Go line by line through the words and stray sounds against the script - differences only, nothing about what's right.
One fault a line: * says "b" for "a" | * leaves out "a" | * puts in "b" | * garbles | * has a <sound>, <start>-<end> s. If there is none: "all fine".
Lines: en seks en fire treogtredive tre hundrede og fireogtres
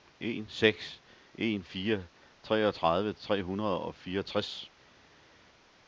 all fine